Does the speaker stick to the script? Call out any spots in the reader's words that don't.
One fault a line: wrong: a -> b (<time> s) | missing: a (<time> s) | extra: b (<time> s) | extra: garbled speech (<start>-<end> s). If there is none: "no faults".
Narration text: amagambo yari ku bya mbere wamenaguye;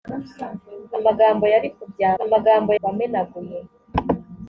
wrong: mbere -> amagambo (2.2 s)